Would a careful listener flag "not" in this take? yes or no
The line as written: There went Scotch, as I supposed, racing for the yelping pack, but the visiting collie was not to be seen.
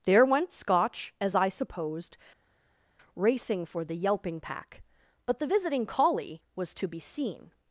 yes